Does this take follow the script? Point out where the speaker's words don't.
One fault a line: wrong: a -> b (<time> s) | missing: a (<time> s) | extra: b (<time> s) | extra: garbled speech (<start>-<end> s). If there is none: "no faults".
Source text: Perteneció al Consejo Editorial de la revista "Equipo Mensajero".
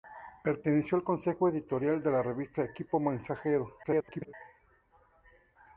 extra: garbled speech (3.8-4.3 s)